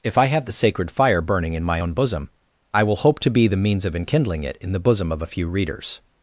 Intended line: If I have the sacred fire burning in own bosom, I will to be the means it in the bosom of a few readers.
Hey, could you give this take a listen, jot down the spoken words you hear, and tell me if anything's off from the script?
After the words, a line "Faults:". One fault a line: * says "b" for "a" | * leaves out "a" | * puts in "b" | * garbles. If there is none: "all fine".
If I have the sacred fire burning in my own bosom, I will hope to be the means of enkindling it in the bosom of a few readers.
Faults:
* puts in "my"
* puts in "hope"
* puts in "of enkindling"